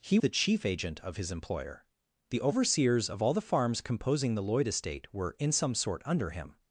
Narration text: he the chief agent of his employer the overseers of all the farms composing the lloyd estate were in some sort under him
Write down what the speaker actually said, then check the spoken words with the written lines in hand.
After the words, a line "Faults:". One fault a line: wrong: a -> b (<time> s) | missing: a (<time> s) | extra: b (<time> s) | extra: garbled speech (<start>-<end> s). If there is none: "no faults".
he the chief agent of his employer the overseers of all the farms composing the lloyd estate were in some sort under him
Faults:
no faults